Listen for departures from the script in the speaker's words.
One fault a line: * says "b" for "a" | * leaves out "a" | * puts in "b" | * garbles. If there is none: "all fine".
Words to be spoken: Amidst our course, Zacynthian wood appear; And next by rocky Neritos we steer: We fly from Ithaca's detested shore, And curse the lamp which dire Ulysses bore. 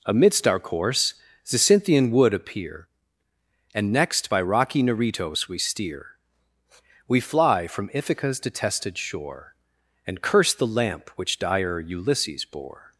all fine